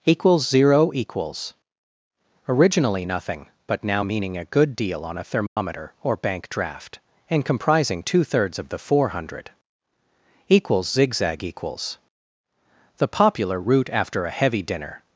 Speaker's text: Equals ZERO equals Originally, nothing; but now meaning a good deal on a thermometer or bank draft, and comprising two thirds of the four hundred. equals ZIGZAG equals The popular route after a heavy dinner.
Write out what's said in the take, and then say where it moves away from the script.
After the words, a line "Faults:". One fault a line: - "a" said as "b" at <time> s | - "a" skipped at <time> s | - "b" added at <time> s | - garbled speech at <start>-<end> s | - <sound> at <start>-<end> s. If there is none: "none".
Equals ZERO equals Originally, nothing; but now meaning a good deal on a thermometer or bank draft, and comprising two thirds of the four hundred. equals ZIGZAG equals The popular route after a heavy dinner.
Faults:
- dropout at 5.5-5.6 s